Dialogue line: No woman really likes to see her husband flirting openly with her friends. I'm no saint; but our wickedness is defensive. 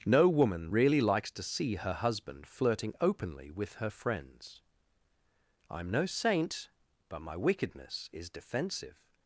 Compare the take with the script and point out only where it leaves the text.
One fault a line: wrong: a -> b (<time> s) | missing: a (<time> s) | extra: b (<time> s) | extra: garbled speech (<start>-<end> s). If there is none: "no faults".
wrong: our -> my (7.2 s)